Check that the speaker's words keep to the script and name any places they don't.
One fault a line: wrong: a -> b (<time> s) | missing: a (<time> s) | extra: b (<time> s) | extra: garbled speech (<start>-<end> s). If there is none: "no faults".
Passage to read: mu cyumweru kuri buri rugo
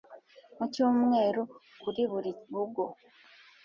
no faults